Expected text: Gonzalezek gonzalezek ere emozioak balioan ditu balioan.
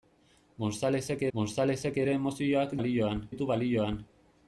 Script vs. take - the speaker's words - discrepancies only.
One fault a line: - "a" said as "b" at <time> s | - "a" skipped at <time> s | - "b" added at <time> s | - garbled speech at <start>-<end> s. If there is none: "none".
none